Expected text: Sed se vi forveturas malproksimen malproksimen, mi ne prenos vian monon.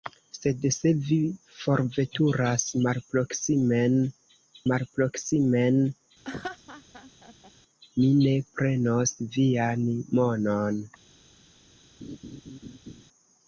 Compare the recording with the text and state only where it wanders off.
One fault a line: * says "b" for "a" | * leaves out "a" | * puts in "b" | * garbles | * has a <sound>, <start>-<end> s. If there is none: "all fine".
* has a laugh, 6.2-7.5 s
* has a laugh, 12.0-13.0 s